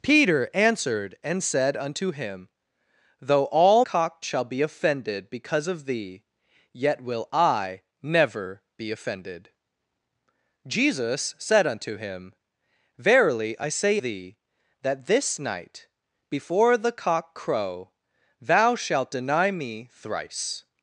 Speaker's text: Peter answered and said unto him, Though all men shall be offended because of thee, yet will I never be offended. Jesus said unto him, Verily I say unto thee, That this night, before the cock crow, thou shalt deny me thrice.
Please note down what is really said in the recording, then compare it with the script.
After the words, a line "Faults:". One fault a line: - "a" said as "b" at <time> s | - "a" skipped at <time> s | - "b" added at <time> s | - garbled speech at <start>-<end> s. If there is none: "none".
Peter answered and said unto him, Though all cock shall be offended because of thee, yet will I never be offended. Jesus said unto him, Verily I say thee, That this night, before the cock crow, thou shalt deny me thrice.
Faults:
- "men" said as "cock" at 3.8 s
- "unto" skipped at 14.0 s